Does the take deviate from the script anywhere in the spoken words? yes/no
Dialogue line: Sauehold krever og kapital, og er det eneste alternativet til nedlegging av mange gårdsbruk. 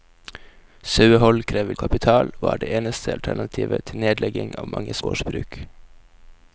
no